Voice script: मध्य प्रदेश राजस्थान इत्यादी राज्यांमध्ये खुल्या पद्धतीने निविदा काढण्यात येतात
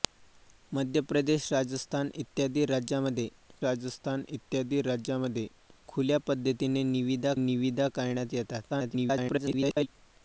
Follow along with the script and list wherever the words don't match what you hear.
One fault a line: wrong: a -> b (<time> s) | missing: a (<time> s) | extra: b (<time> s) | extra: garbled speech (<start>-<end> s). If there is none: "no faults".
extra: राजस्थान इत्यादी राज्यांमध्ये (3.6 s)
extra: निविदा (7.4 s)
extra: garbled speech (8.7-9.9 s)